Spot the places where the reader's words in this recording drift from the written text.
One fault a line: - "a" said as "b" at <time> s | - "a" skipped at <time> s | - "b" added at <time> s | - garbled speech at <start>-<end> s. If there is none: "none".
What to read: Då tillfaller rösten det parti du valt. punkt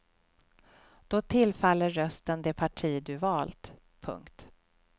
none